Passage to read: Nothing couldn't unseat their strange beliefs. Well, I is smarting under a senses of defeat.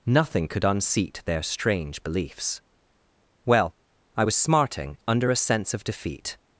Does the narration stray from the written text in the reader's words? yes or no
yes